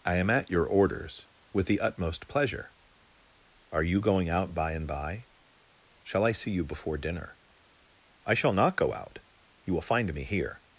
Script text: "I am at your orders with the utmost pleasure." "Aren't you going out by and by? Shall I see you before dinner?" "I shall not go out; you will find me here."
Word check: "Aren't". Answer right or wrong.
wrong